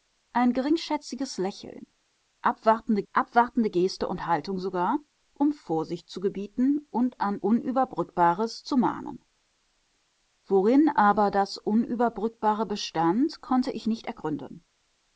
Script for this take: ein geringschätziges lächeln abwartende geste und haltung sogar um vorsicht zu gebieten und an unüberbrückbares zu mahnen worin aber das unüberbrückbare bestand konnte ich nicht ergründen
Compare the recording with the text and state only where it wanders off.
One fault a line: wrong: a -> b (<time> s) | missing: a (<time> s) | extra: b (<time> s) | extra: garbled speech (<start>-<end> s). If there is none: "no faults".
extra: abwartende (3.1 s)